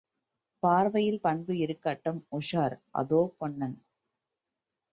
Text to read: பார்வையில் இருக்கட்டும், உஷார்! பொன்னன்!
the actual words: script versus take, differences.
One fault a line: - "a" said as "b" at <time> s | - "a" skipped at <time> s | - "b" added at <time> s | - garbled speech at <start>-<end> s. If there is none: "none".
- "பண்பு" added at 1.2 s
- "அதோ" added at 2.9 s